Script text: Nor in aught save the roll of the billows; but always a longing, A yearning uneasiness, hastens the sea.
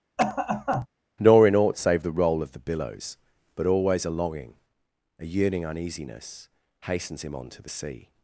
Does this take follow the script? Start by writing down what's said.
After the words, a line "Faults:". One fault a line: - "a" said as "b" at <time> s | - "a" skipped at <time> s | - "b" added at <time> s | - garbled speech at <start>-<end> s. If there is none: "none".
Nor in aught save the roll of the billows; but always a longing, A yearning uneasiness, hastens him on to the sea.
Faults:
- "him on to" added at 7.2 s